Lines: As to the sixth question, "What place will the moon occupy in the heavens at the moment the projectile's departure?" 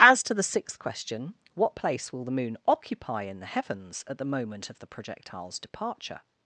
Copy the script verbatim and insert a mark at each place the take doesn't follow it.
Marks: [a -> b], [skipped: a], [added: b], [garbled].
As to the sixth question, "What place will the moon occupy in the heavens at the moment [added: of] the projectile's departure?"